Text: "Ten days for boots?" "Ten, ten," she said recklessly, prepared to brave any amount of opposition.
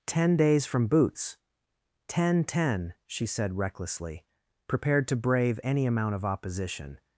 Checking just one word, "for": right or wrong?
wrong